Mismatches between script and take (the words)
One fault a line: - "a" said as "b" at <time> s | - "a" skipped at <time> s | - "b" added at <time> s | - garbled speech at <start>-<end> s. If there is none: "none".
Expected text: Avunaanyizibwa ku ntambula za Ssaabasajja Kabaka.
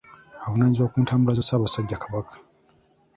none